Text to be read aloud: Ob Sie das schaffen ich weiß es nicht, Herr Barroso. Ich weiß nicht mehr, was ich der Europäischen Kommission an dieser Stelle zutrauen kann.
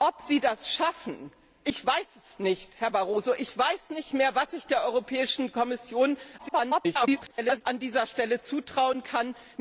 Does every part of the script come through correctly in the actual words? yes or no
no